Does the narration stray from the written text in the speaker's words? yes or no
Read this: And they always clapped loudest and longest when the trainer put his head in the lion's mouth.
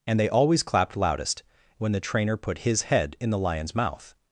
yes